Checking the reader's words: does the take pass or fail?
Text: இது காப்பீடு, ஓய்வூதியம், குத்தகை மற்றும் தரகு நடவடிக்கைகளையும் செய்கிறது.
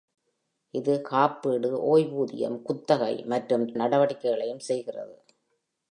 fail